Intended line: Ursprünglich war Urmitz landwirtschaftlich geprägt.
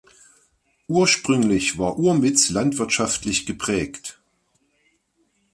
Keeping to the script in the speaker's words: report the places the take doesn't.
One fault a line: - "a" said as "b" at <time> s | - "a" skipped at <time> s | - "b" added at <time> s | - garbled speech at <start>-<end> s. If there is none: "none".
none